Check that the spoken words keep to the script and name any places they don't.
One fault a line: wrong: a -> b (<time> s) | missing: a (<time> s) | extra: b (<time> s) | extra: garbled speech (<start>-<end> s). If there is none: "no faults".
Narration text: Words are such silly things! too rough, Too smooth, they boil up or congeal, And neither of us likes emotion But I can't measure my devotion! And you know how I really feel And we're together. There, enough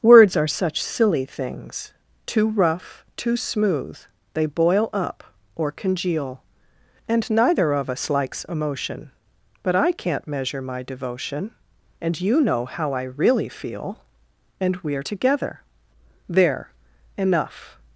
no faults